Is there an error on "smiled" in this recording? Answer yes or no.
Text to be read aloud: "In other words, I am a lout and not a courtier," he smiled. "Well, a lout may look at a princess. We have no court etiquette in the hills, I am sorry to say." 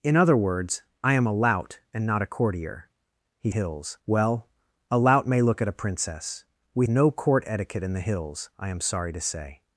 yes